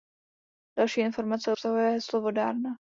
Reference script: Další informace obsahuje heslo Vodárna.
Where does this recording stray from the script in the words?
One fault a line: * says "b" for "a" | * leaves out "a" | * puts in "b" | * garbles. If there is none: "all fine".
all fine